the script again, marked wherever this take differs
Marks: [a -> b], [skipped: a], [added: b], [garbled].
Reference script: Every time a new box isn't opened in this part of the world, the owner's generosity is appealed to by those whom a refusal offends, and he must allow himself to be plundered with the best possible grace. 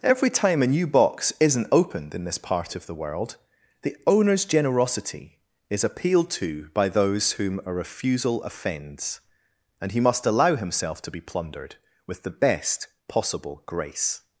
Every time a new box isn't opened in this part of the world, the owner's generosity is appealed to by those whom a refusal offends, and he must allow himself to be plundered with the best possible grace.